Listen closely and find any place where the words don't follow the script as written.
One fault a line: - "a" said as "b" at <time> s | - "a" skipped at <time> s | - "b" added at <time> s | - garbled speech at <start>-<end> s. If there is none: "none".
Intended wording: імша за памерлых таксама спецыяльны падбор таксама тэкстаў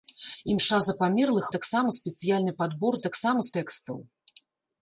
none